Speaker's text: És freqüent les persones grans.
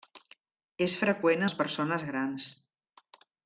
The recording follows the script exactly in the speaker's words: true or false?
true